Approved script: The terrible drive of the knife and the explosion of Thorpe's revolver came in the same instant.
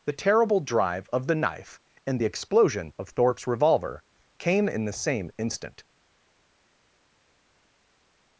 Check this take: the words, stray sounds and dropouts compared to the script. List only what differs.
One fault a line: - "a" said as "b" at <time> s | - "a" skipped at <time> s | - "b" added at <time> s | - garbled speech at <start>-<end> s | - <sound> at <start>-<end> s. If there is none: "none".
none